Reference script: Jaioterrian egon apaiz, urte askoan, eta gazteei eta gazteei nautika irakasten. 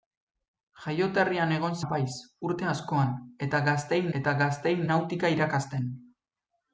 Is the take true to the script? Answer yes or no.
yes